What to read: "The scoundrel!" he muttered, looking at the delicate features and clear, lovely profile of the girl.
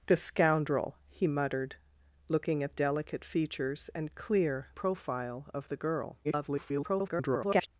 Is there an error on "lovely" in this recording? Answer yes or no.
yes